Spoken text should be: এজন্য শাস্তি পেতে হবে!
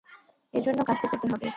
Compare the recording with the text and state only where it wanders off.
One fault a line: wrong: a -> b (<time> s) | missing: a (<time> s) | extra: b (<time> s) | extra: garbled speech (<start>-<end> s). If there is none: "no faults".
no faults